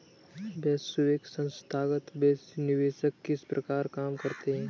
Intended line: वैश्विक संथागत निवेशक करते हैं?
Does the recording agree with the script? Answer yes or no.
no